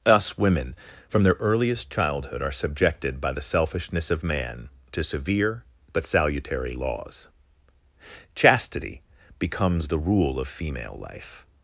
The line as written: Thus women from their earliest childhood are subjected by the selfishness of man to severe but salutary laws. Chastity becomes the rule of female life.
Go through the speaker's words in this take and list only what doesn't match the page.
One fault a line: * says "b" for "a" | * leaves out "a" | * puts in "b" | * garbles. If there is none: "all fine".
* says "Us" for "Thus"